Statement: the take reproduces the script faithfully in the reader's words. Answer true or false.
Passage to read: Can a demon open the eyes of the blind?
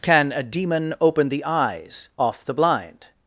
false